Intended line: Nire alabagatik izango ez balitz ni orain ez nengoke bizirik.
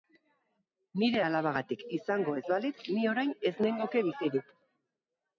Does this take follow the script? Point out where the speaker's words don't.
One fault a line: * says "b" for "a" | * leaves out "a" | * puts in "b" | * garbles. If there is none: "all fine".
all fine